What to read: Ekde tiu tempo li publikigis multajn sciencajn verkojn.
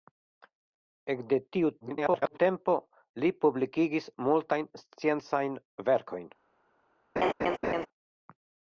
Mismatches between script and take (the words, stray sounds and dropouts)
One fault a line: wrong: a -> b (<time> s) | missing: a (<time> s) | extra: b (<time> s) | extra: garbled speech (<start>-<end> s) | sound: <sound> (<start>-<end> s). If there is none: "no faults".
extra: garbled speech (1.8-2.4 s)
sound: laugh (7.2-7.9 s)